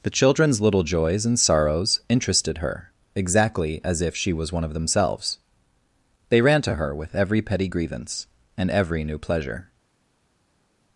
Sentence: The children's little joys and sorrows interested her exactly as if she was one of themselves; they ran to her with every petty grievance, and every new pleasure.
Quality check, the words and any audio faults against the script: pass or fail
pass